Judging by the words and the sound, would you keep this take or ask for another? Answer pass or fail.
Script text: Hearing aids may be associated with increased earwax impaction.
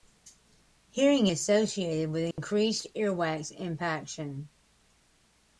fail